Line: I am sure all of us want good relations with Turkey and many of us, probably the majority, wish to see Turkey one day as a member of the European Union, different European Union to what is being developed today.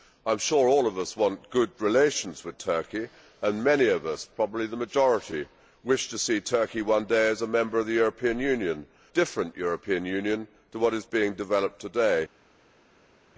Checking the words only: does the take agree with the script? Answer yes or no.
yes